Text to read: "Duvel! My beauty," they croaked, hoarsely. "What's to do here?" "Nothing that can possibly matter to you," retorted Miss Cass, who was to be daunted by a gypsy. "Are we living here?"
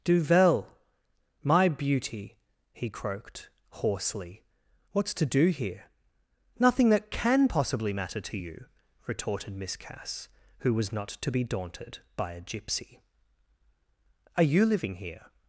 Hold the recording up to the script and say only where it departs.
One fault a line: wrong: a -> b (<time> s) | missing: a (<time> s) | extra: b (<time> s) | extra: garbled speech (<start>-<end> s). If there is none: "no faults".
wrong: they -> he (2.7 s)
extra: not (10.9 s)
wrong: we -> you (14.4 s)